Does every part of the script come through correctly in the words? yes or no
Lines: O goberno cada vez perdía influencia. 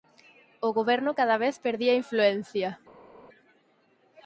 yes